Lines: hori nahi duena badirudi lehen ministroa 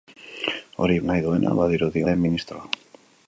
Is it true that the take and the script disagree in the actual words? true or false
false